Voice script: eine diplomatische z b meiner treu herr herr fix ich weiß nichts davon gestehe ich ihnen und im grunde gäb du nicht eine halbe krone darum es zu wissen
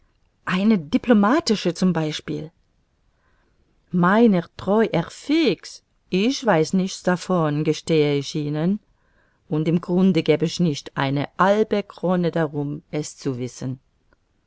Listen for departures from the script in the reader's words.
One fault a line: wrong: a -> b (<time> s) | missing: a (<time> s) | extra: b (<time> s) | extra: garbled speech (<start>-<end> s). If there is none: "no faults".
missing: herr (5.1 s)
wrong: du -> ich (10.4 s)